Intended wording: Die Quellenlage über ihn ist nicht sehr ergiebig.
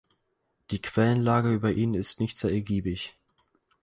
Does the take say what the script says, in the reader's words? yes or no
yes